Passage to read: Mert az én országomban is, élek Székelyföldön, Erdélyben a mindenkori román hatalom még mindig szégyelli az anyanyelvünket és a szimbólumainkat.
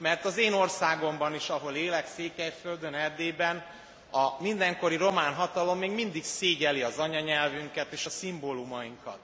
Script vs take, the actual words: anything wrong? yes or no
yes